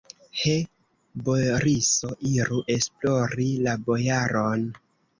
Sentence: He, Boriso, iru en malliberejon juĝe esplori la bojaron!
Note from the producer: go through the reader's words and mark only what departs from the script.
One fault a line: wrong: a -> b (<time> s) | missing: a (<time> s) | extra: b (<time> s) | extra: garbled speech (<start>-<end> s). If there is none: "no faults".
missing: en malliberejon juĝe (2.6 s)